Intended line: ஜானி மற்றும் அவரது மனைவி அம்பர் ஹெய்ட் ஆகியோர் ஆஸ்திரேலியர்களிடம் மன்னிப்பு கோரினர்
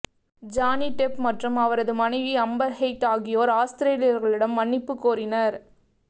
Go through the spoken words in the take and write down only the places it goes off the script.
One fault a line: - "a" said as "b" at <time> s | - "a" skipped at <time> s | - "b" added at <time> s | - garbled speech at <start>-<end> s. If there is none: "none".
- "டெப்" added at 0.9 s